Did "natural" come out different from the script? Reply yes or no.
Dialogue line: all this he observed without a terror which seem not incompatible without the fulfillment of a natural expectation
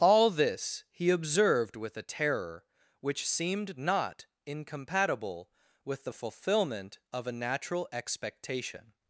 no